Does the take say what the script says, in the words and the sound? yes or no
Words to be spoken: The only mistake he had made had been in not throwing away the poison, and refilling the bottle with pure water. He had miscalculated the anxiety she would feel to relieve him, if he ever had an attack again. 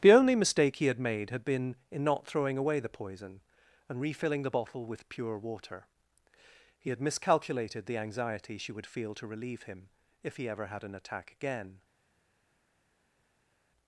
yes